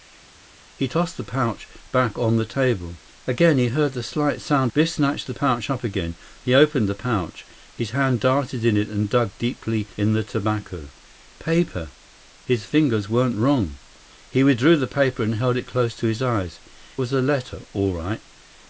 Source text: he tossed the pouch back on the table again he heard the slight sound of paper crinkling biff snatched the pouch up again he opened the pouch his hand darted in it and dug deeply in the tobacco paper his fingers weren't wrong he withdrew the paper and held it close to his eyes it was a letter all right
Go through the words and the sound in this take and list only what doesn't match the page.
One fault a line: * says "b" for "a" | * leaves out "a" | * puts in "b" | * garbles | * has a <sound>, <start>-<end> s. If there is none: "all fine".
* leaves out "of paper crinkling"
* leaves out "it"